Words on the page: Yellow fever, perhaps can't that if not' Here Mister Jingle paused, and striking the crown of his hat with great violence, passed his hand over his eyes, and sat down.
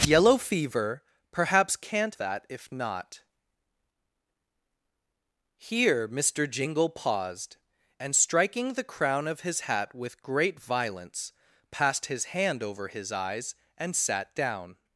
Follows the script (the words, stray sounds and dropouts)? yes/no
yes